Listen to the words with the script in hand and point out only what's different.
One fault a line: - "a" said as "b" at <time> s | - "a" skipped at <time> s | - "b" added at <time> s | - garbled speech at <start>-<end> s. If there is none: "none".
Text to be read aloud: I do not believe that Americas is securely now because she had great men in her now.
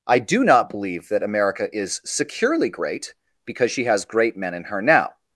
- "Americas" said as "America" at 1.2 s
- "now" said as "great" at 2.7 s
- "had" said as "has" at 3.9 s